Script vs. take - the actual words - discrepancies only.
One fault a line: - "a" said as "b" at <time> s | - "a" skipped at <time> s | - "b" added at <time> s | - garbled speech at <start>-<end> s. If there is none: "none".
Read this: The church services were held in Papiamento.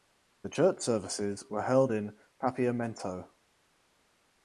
none